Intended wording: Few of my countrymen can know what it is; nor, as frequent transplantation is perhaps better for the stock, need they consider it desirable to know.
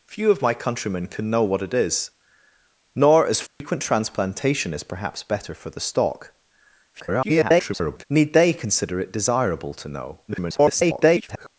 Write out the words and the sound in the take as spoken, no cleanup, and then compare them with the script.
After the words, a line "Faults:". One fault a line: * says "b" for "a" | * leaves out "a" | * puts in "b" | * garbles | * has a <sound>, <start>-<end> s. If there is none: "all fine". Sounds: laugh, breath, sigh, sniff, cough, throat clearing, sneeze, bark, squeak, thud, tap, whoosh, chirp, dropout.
Few of my countrymen can know what it is; nor, as frequent transplantation is perhaps better for the stock, [garbled] need they consider it desirable to know. [garbled]
Faults:
* has a dropout, 3.5-3.6 s
* garbles
* garbles